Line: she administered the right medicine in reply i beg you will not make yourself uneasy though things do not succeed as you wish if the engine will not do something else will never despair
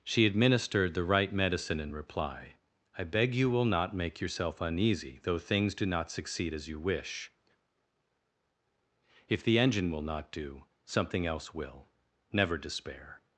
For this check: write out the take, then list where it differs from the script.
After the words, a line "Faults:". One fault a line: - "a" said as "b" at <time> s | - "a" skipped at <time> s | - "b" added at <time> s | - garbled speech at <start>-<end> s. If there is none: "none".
she administered the right medicine in reply i beg you will not make yourself uneasy though things do not succeed as you wish if the engine will not do something else will never despair
Faults:
none